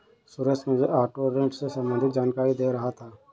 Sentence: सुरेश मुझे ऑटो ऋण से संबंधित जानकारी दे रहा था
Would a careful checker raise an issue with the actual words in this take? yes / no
no